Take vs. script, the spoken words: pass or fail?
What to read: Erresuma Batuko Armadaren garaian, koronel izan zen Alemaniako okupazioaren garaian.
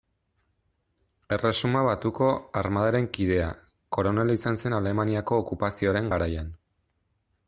fail